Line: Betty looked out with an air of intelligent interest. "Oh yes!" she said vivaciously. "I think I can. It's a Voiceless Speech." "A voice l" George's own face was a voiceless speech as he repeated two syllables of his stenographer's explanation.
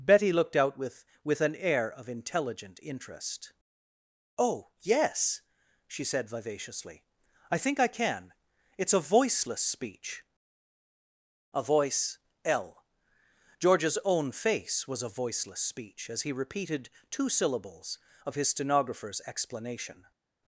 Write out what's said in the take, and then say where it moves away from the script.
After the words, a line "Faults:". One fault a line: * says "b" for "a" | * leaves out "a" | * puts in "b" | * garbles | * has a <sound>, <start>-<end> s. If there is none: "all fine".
Betty looked out with with an air of intelligent interest. "Oh yes!" she said vivaciously. "I think I can. It's a Voiceless Speech." "A voice l" George's own face was a voiceless speech as he repeated two syllables of his stenographer's explanation.
Faults:
* puts in "with"